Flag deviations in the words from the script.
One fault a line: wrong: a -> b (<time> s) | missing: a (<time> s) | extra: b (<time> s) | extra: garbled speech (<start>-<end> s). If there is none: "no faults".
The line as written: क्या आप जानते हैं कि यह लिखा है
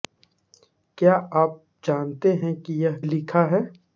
no faults